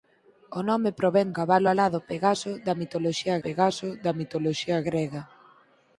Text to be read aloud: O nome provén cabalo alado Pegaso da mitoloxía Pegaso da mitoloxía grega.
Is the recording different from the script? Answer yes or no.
no